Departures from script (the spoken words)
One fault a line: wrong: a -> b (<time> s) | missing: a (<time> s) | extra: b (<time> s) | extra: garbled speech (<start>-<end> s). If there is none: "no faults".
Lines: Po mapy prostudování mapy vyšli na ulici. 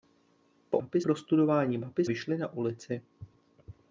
no faults